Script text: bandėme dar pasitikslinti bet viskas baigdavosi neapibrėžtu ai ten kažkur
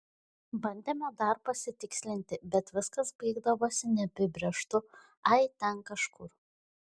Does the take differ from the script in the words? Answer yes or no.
no